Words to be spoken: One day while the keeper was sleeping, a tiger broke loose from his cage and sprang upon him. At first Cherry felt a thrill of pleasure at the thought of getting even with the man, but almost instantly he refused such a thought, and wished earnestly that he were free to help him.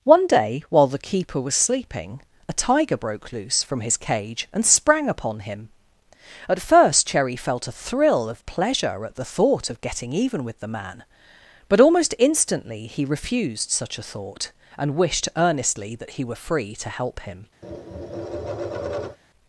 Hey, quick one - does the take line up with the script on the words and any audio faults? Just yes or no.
no